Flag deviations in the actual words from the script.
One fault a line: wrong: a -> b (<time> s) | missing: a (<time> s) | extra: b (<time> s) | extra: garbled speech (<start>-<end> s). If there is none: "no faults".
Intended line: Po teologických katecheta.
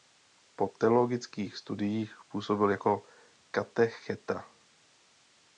extra: studiích působil jako (1.6 s)